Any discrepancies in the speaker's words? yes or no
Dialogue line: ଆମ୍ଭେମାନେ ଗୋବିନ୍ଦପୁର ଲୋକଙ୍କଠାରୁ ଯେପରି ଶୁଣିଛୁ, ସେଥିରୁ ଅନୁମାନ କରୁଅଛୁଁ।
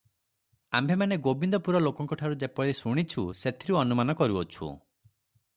no